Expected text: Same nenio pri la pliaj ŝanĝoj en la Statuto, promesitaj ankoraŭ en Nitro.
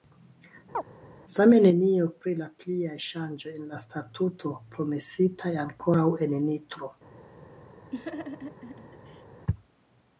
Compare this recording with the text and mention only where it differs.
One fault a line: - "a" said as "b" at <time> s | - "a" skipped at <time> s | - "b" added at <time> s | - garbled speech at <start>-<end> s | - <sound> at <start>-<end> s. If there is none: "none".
- chirp at 0.7-0.8 s
- laugh at 7.9-9.3 s